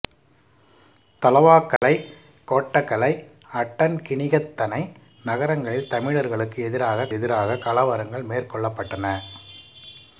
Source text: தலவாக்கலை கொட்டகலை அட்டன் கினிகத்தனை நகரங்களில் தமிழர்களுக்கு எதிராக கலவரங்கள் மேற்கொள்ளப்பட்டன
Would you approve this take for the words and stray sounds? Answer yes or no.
no